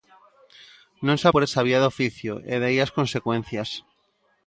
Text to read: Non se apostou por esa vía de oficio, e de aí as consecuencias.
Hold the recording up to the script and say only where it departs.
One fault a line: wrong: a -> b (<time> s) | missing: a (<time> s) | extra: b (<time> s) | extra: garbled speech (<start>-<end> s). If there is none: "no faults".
missing: apostou (1.3 s)